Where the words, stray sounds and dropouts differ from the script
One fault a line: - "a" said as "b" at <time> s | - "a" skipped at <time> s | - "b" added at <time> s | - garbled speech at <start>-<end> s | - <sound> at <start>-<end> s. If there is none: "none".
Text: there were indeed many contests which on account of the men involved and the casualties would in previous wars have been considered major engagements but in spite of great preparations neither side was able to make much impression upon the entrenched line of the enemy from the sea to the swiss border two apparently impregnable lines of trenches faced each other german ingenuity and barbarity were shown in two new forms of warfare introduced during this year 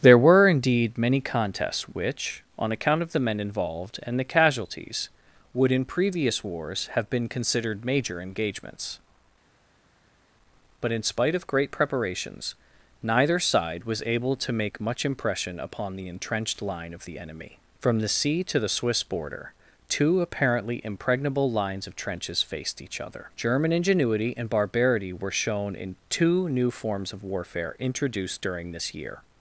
none